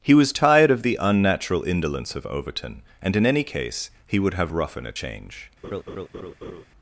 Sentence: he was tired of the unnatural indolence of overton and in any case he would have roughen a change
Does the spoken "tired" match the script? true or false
true